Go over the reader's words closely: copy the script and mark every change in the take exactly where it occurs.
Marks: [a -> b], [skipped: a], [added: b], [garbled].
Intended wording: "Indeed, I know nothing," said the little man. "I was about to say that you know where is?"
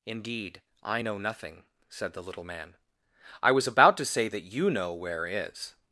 "Indeed, I know nothing," said the little man. "I was about to say that you know where is?"